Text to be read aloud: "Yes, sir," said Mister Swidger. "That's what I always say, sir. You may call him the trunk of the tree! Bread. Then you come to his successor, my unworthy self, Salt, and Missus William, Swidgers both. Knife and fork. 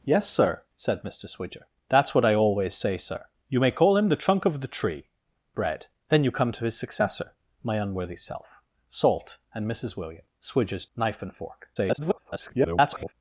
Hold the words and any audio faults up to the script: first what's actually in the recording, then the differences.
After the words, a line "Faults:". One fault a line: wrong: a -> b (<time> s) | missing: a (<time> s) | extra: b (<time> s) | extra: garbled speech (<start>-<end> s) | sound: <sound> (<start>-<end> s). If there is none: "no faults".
"Yes, sir," said Mister Swidger. "That's what I always say, sir. You may call him the trunk of the tree! Bread. Then you come to his successor, my unworthy self, Salt, and Missus William, Swidgers. Knife and fork. [garbled]
Faults:
missing: both (10.9 s)
extra: garbled speech (11.8-13.1 s)